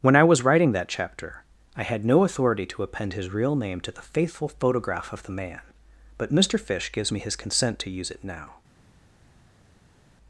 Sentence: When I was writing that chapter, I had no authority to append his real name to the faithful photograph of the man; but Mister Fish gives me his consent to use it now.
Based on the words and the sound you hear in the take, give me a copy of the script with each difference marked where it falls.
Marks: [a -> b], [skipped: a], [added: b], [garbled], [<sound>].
When I was writing that chapter, I had no authority to append his real name to the faithful photograph of the man; but Mister Fish gives me his consent to use it now.